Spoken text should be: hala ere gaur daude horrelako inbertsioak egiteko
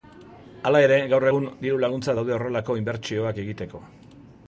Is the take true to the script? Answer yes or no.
no